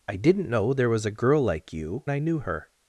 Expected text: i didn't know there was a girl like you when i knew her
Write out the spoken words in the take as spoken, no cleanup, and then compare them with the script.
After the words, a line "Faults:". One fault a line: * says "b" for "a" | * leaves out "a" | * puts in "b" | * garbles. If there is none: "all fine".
i didn't know there was a girl like you i knew her
Faults:
* leaves out "when"